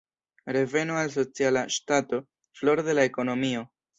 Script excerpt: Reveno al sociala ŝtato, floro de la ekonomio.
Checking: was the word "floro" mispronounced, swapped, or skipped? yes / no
no